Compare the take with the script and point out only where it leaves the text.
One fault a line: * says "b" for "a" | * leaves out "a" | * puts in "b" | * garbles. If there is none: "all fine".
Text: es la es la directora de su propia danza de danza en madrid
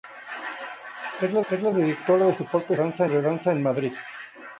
all fine